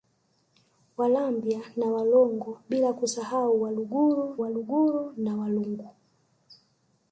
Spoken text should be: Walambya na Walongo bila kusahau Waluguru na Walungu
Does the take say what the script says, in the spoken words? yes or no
no